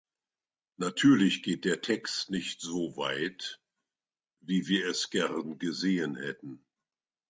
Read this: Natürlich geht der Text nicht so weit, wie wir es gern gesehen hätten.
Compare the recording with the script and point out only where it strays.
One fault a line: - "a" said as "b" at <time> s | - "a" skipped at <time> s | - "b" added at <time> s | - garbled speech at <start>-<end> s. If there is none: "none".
none